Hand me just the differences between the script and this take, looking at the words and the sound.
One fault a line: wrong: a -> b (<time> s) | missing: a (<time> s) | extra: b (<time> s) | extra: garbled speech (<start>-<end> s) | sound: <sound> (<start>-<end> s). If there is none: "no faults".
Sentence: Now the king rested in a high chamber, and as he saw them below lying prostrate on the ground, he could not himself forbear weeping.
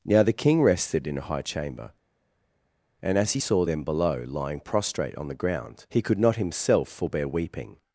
no faults